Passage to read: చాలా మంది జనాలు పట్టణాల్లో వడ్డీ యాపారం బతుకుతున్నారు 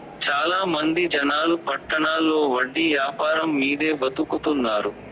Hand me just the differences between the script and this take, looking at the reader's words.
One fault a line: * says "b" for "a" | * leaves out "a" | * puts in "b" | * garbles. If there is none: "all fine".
* puts in "మీదే"